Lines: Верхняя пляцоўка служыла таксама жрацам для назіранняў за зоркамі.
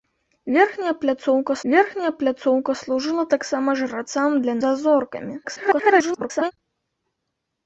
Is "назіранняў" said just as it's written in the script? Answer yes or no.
no